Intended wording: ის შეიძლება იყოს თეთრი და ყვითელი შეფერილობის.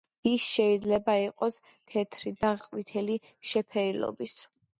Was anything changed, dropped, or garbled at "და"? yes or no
no